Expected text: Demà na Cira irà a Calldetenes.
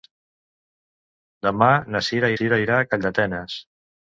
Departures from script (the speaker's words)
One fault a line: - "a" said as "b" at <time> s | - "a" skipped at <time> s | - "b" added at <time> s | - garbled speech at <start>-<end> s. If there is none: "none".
- "Cira" added at 2.3 s